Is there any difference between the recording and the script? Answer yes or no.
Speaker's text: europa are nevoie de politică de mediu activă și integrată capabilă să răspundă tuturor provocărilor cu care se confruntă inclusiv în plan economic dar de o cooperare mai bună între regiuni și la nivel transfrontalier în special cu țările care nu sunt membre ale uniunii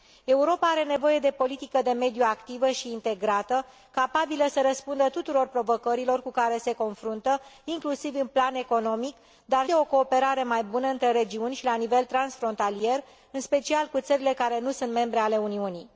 no